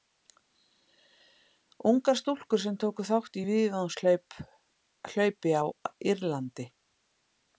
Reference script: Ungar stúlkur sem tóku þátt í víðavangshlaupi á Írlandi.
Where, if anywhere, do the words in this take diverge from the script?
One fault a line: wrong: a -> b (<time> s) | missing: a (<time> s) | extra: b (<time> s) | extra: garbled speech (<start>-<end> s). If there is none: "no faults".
no faults